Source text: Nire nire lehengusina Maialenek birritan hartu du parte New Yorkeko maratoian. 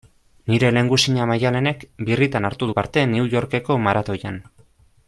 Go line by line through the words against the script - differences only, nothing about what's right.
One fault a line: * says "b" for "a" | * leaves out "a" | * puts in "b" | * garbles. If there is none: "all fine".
* leaves out "nire"